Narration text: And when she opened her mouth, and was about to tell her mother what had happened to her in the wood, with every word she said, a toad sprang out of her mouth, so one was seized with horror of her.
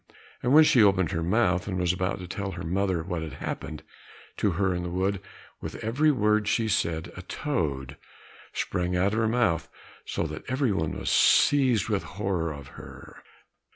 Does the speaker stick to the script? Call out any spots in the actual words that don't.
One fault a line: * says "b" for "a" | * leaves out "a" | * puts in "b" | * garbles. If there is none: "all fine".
* puts in "that every"